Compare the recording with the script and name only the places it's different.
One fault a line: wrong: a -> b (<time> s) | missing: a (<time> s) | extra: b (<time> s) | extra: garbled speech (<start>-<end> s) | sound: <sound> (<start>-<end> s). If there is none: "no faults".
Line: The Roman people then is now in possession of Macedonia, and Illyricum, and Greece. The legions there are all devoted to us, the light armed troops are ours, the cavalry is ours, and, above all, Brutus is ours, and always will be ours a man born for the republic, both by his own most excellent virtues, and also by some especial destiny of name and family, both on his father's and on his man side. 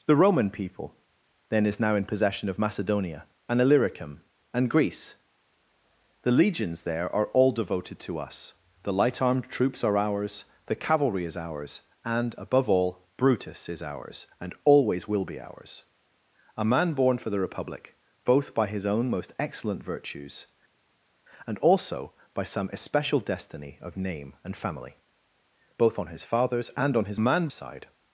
no faults